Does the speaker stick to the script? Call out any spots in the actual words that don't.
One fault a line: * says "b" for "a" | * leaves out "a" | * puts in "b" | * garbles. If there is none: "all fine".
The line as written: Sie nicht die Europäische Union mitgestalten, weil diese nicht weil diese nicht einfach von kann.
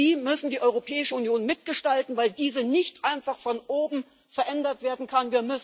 * says "müssen" for "nicht"
* says "einfach von oben verändert werden" for "weil diese nicht einfach von"